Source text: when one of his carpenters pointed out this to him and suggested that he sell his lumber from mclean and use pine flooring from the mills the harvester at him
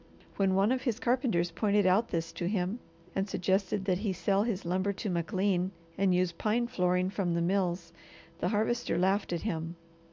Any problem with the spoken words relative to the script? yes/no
yes